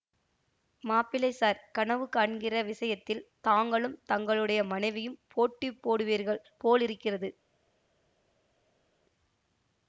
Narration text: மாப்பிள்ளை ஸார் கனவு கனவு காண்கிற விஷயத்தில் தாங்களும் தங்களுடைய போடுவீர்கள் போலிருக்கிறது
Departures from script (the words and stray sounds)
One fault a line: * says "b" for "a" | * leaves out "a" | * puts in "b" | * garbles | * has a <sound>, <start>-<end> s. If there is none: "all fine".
* leaves out "கனவு"
* puts in "மனைவியும் போட்டி"